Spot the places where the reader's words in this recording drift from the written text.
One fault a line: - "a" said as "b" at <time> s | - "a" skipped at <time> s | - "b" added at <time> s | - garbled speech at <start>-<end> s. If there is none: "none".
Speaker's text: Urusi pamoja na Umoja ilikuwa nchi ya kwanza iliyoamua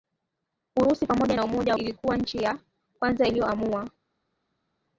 none